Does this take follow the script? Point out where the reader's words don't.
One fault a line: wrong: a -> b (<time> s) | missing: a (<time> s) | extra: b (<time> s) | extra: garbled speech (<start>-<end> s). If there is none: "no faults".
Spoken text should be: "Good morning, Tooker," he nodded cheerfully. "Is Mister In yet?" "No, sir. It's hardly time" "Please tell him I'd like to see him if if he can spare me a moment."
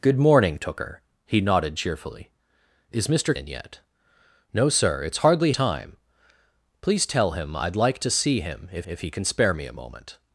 no faults